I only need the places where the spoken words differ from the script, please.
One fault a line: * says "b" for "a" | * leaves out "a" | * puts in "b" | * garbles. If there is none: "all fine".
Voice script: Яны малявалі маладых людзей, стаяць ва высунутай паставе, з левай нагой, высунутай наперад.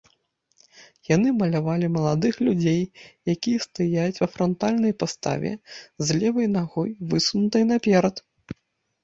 * puts in "якія"
* says "франтальнай" for "высунутай"